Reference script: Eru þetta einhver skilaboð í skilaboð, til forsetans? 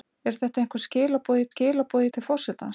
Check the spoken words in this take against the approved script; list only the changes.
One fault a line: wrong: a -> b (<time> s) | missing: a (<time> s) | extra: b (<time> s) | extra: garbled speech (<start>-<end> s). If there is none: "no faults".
no faults